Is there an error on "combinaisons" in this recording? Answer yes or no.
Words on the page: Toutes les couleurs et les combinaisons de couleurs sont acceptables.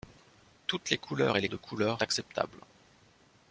yes